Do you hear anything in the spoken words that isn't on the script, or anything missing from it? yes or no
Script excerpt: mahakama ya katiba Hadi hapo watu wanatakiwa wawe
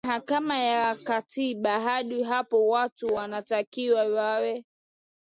no